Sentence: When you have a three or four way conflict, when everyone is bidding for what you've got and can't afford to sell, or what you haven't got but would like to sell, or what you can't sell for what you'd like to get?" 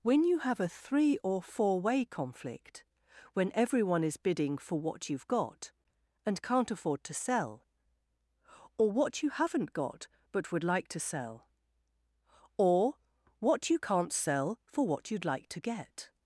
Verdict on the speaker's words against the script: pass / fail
pass